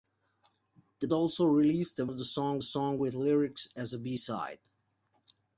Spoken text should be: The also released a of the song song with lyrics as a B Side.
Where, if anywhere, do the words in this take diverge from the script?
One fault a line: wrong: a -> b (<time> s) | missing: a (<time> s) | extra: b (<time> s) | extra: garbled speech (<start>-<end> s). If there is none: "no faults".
no faults